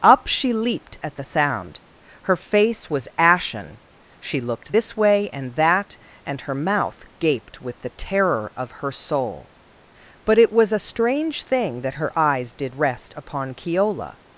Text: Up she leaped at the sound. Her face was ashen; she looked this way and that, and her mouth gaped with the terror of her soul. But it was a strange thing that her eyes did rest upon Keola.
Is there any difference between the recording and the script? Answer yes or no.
no